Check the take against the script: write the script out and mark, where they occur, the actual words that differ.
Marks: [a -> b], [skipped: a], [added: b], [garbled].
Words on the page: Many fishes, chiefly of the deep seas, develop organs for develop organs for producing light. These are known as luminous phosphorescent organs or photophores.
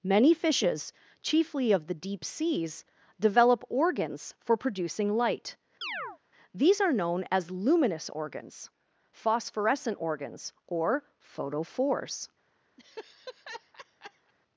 Many fishes, chiefly of the deep seas, develop organs for [skipped: develop organs for] producing light. These are known as luminous [added: organs] phosphorescent organs or photophores.